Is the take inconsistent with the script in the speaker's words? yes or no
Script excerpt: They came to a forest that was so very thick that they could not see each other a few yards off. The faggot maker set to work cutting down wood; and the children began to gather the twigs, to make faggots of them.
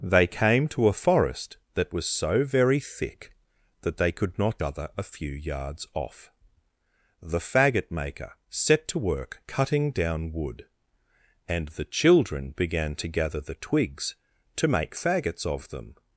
yes